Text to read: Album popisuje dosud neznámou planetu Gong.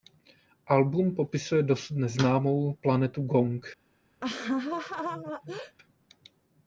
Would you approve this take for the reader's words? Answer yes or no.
yes